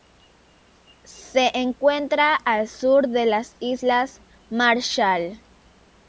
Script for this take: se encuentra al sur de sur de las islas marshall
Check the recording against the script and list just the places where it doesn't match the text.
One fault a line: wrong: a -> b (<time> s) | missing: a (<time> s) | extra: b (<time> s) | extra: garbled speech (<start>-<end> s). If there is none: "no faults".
missing: sur de (3.2 s)